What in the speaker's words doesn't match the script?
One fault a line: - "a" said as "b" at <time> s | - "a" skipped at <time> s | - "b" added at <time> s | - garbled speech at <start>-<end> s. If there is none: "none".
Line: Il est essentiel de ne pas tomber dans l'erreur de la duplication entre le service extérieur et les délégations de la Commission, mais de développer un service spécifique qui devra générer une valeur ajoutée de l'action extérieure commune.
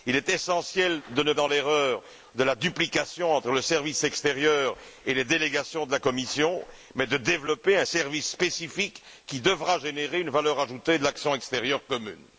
- "pas tomber" skipped at 1.3 s